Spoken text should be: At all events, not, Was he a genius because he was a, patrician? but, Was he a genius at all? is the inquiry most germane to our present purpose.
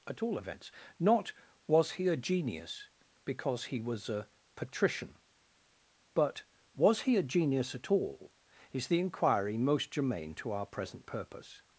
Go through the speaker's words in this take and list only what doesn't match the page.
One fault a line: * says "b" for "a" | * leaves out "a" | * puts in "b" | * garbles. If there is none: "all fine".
all fine